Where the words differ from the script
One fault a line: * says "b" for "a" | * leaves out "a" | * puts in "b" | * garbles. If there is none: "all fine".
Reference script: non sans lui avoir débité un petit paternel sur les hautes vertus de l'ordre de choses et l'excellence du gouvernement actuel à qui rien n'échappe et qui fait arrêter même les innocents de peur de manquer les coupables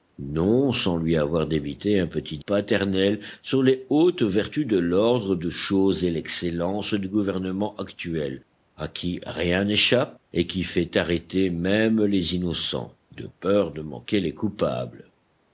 all fine